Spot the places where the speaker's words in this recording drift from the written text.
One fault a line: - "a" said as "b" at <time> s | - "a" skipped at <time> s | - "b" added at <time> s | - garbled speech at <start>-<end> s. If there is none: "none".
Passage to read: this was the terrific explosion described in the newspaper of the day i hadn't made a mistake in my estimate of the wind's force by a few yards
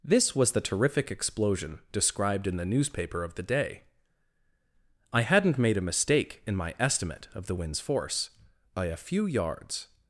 none